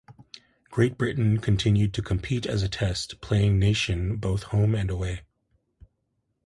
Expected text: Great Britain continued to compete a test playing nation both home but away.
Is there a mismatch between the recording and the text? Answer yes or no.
yes